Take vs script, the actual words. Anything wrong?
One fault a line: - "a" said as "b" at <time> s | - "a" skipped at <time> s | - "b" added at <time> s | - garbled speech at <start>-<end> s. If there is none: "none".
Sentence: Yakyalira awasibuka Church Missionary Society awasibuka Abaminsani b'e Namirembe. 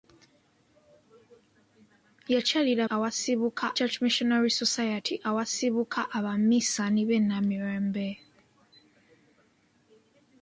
none